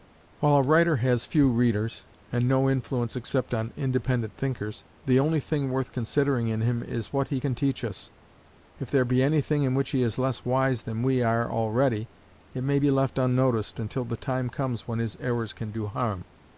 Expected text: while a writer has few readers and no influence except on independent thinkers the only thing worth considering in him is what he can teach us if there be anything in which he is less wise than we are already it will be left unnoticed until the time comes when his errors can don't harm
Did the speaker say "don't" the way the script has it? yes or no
no